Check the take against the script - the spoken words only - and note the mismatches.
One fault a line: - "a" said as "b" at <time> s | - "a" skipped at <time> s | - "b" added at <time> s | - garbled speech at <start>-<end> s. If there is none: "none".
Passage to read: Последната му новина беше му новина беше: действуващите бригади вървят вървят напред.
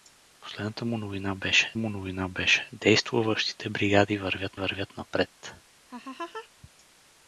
none